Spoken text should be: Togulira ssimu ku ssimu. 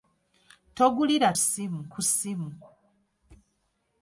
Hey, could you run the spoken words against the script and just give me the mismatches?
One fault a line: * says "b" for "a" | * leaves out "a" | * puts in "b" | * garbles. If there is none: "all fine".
all fine